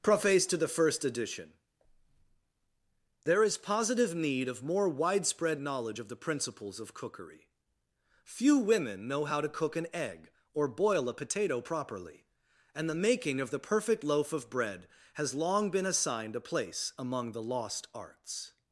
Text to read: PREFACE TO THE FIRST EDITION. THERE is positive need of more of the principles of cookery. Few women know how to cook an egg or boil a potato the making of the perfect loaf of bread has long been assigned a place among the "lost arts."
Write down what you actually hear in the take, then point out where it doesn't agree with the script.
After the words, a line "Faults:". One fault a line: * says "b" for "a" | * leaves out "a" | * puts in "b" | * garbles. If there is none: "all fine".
PREFACE TO THE FIRST EDITION. THERE is positive need of more widespread knowledge of the principles of cookery. Few women know how to cook an egg or boil a potato properly, and the making of the perfect loaf of bread has long been assigned a place among the "lost arts."
Faults:
* puts in "widespread knowledge"
* puts in "properly and"